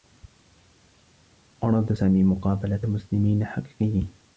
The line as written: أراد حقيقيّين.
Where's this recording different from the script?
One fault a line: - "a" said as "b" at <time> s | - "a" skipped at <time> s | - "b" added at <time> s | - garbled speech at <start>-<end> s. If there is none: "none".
- "سامي مقابلة مسلمين" added at 1.9 s